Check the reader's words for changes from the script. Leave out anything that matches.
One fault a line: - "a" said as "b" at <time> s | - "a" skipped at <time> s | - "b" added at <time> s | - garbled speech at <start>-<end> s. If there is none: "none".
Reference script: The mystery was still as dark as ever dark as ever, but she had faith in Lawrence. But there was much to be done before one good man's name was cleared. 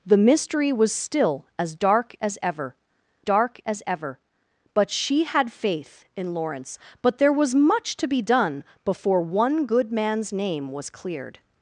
none